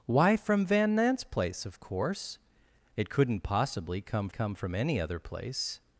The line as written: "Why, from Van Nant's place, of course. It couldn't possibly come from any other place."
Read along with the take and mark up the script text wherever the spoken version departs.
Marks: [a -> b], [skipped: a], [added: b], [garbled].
"Why, from Van Nant's place, of course. It couldn't possibly come [added: come] from any other place."